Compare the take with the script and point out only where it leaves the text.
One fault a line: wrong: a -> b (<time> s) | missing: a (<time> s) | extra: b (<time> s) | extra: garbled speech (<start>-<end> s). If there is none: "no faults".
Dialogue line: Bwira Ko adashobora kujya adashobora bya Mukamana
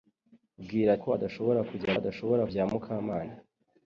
no faults